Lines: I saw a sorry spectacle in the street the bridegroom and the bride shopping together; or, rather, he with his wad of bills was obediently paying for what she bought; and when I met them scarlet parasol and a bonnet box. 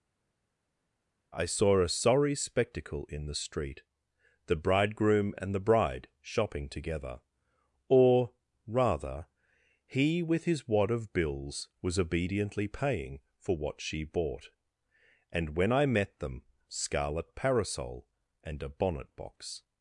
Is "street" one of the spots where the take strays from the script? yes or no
no